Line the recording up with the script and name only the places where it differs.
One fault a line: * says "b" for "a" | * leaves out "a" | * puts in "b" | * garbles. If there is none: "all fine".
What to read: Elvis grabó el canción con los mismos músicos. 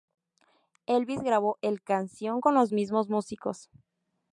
all fine